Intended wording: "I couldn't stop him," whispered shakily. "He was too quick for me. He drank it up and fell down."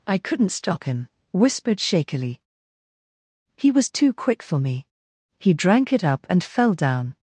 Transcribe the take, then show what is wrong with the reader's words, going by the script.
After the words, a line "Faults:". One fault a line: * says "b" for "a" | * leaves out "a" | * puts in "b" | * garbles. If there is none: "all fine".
"I couldn't stop him," whispered shakily. "He was too quick for me. He drank it up and fell down."
Faults:
all fine